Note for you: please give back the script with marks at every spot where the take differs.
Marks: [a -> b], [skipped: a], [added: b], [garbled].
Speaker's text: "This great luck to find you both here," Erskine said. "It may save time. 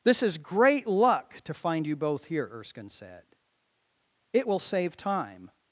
"This [added: is] great luck to find you both here," Erskine said. "It [may -> will] save time.